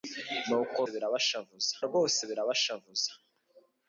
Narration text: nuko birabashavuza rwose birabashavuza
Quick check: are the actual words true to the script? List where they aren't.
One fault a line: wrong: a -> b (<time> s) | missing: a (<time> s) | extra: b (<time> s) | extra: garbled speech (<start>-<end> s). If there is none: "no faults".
no faults